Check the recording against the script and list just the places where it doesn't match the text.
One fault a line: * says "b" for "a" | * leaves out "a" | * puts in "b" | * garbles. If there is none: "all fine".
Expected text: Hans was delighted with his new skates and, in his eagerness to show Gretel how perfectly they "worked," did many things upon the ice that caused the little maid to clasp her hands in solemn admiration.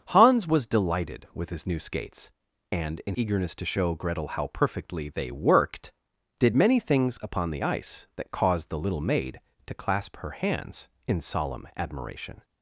* leaves out "his"